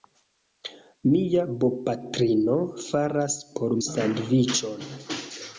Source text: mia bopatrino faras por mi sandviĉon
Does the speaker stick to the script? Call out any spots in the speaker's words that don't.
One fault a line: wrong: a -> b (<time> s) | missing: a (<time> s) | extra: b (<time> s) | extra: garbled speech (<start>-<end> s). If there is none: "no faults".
missing: mi (3.8 s)